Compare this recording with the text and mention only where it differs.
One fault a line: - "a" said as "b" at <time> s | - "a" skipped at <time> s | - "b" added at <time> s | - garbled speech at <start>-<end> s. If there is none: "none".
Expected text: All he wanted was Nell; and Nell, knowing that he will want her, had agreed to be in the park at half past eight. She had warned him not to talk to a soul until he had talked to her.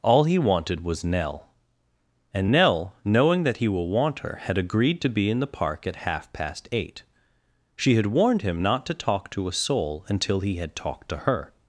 none